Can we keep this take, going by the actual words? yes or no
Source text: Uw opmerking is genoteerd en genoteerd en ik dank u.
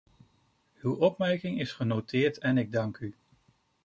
no